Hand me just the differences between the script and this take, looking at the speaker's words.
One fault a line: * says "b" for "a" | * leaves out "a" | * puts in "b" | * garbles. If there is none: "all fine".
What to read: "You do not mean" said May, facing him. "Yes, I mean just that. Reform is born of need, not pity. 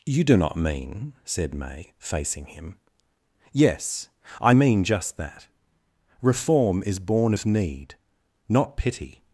all fine